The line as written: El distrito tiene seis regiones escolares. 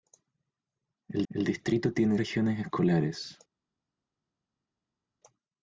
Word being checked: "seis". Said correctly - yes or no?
no